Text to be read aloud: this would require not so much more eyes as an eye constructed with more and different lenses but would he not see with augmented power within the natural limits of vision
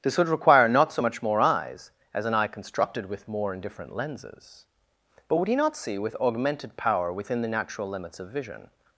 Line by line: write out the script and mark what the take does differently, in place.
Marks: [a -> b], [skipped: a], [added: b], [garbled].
this would require not so much more eyes as an eye constructed with more and different lenses but would he not see with augmented power within the natural limits of vision